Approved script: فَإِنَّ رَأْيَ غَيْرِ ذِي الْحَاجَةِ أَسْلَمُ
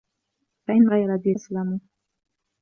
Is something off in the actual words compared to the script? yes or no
yes